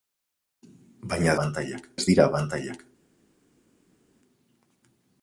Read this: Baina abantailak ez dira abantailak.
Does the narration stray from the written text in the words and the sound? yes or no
no